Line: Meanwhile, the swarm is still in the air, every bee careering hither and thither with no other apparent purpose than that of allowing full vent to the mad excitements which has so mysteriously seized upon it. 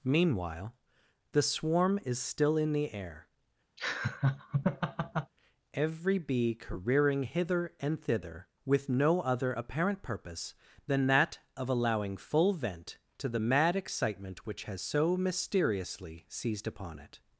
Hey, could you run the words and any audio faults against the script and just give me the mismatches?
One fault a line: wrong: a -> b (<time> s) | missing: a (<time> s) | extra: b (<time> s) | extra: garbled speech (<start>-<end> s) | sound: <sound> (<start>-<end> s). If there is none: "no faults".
sound: laugh (3.8-5.3 s)
wrong: excitements -> excitement (13.7 s)